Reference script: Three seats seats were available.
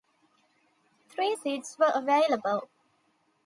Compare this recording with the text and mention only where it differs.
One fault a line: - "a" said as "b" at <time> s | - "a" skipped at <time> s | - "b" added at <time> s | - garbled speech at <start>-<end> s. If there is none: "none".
- "seats" skipped at 1.8 s